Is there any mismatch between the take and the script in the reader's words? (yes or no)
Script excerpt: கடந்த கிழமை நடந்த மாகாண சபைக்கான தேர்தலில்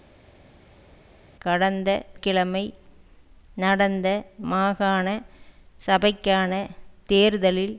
no